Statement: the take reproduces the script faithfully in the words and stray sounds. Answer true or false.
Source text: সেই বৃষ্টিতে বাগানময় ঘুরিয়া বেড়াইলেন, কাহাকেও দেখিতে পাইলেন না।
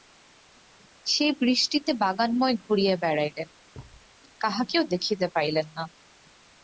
false